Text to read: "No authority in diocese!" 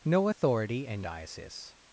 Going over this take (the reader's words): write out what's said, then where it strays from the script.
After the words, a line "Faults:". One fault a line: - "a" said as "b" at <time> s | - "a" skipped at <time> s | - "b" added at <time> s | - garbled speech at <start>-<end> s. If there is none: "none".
"No authority in diocese!"
Faults:
none